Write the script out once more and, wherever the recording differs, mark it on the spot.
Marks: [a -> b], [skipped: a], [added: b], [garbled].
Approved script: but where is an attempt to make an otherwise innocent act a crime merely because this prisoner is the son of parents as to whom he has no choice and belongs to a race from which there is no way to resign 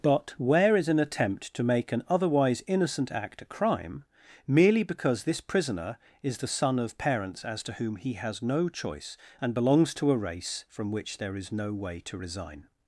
but where is an attempt to make an otherwise innocent act a crime merely because this prisoner is the son of parents as to whom he has no choice and belongs to a race from which there is no way to resign